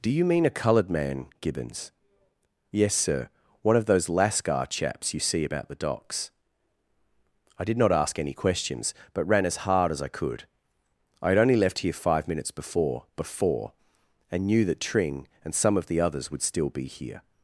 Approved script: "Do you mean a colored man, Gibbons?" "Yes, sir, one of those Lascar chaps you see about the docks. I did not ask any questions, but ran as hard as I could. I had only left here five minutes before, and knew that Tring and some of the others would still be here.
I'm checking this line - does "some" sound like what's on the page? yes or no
yes